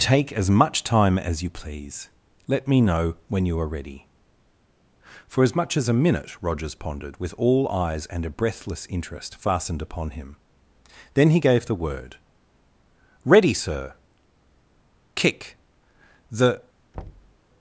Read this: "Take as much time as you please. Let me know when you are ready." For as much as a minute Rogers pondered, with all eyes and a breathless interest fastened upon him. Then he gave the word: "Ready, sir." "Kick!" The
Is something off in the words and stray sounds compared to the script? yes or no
yes